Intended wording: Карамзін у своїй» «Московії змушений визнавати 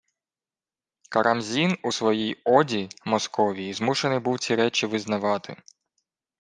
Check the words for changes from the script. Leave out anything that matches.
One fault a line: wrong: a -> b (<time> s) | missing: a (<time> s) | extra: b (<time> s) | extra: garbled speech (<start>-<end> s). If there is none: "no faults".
extra: оді (2.4 s)
extra: був ці речі (4.2 s)